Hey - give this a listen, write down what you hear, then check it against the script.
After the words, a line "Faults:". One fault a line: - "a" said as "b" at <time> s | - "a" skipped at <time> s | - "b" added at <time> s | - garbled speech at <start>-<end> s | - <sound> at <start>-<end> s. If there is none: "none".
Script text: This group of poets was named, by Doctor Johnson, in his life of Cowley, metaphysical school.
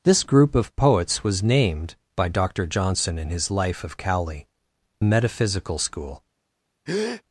This group of poets was named, by Doctor Johnson, in his life of Cowley, metaphysical school.
Faults:
- breath at 6.9-7.2 s